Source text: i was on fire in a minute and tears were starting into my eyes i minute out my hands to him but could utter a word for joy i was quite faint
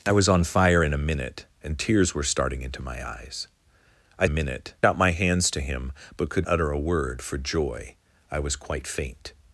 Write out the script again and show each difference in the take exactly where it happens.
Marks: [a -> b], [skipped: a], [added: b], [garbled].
i was on fire in a minute and tears were starting into my eyes i minute out my hands to him but could utter a word for joy i was quite faint